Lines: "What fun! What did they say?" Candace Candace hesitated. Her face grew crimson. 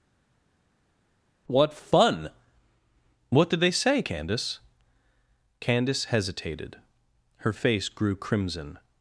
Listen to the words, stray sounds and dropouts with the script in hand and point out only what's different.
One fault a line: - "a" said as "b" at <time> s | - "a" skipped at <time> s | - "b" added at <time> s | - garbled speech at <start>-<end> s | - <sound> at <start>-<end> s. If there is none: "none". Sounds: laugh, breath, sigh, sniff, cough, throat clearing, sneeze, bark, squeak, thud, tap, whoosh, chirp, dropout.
none